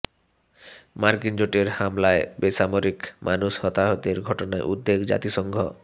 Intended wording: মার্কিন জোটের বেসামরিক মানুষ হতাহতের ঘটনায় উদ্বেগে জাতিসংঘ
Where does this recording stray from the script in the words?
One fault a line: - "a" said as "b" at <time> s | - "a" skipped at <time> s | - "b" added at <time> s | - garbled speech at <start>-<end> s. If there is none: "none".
- "হামলায়" added at 1.8 s